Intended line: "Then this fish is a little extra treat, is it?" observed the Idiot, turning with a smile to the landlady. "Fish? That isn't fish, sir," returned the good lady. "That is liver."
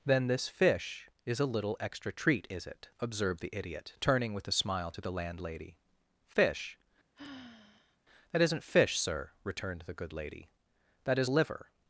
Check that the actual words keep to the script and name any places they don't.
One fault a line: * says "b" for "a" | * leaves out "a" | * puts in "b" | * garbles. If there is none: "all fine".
all fine